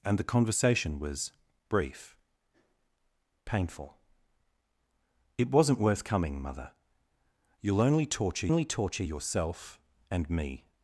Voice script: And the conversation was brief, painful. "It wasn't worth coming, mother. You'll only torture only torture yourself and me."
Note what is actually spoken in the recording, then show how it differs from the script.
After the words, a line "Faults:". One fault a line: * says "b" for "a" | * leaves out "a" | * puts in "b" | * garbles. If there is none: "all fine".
And the conversation was brief, painful. "It wasn't worth coming, mother. You'll only torture only torture yourself and me."
Faults:
all fine